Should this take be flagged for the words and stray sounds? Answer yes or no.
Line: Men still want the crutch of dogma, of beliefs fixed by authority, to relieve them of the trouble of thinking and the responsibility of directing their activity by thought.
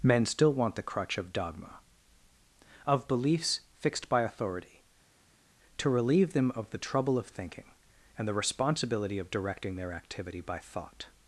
no